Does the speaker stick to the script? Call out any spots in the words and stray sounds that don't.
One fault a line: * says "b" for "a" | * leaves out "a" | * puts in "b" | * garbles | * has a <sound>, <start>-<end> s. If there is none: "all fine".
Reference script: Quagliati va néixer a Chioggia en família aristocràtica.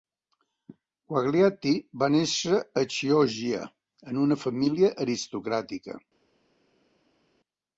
* puts in "una"